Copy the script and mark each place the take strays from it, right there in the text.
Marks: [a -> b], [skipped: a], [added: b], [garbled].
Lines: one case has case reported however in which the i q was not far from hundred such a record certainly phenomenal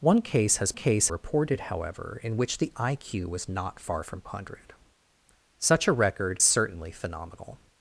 one case has case reported however in which the i q was not far from hundred such a record certainly phenomenal